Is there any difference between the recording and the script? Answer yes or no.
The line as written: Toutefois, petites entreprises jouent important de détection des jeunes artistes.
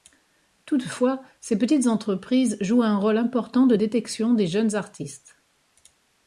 yes